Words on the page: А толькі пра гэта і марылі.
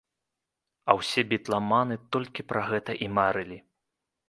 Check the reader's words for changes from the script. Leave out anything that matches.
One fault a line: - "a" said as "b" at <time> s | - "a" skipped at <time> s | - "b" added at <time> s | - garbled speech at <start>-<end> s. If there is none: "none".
- "ўсе бітламаны" added at 1.0 s